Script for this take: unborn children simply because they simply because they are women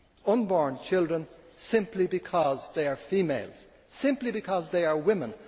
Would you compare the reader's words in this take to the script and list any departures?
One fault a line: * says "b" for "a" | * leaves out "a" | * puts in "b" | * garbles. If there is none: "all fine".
* puts in "are females"